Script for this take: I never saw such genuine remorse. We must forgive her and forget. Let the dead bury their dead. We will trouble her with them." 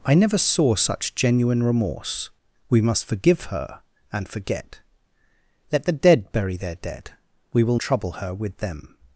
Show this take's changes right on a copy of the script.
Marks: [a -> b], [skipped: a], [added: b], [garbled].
I never saw such genuine remorse. We must forgive her and forget. Let the dead bury their dead. We will trouble her with them."